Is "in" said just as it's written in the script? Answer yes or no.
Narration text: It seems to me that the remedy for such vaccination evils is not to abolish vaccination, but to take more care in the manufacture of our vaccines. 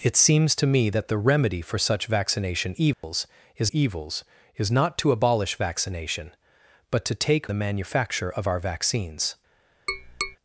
no